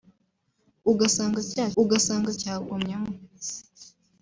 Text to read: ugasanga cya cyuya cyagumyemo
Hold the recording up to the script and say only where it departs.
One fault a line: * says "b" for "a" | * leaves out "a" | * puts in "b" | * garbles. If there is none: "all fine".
* says "ugasanga" for "cyuya"